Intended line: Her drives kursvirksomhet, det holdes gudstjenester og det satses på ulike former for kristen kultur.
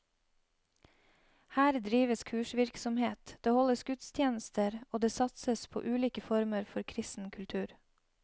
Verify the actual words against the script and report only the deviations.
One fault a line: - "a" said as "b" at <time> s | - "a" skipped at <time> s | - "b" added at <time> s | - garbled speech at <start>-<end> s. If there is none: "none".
none